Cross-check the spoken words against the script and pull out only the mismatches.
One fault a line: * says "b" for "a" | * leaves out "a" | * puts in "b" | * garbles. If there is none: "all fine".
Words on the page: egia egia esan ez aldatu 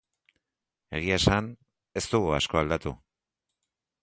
* leaves out "egia"
* puts in "dugu asko"